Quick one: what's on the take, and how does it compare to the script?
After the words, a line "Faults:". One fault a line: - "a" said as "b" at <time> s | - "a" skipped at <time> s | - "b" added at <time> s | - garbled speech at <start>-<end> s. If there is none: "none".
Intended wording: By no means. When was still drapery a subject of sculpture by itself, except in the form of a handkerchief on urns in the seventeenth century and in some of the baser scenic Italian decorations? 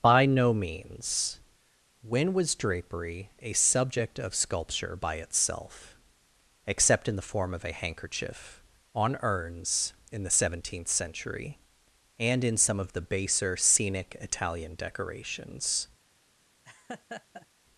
By no means. When was drapery a subject of sculpture by itself, except in the form of a handkerchief on urns in the seventeenth century and in some of the baser scenic Italian decorations?
Faults:
- "still" skipped at 2.5 s